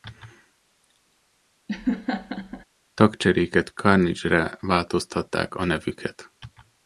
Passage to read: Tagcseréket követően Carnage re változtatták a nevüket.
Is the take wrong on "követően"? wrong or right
wrong